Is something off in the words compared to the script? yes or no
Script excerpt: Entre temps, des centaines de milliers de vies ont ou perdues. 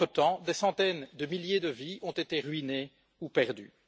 yes